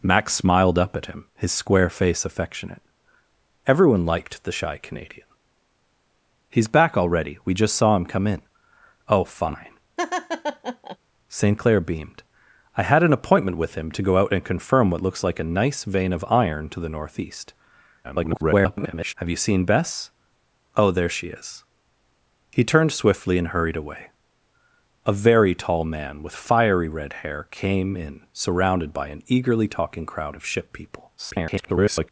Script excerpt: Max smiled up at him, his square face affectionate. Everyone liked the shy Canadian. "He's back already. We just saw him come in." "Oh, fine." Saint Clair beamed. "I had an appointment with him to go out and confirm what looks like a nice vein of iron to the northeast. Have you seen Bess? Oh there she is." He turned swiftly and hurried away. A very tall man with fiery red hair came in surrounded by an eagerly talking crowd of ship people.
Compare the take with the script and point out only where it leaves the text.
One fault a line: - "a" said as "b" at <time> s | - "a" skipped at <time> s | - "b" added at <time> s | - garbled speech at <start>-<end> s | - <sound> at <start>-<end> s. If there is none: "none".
- laugh at 10.0-11.0 s
- garbled speech at 18.0-19.1 s
- garbled speech at 31.2-32.1 s